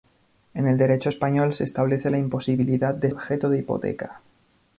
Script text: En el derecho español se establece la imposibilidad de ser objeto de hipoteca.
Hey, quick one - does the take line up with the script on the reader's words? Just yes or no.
no